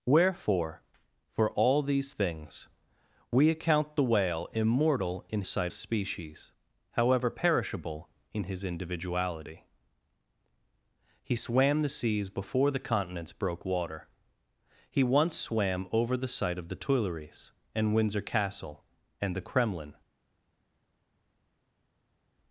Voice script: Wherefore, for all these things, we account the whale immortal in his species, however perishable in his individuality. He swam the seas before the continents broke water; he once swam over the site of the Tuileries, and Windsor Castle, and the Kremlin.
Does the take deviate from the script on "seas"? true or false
false